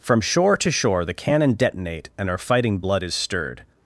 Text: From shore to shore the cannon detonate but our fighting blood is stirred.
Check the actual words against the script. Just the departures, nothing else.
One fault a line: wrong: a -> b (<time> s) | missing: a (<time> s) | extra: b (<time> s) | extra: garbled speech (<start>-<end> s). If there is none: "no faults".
wrong: but -> and (2.2 s)